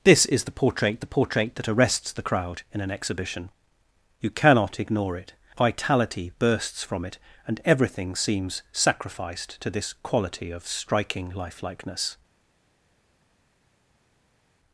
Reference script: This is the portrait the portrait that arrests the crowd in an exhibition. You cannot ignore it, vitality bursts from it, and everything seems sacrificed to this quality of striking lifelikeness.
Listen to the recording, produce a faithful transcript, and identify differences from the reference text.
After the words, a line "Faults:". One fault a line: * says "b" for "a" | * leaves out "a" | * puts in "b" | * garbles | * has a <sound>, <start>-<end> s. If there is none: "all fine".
This is the portrait the portrait that arrests the crowd in an exhibition. You cannot ignore it, vitality bursts from it, and everything seems sacrificed to this quality of striking lifelikeness.
Faults:
all fine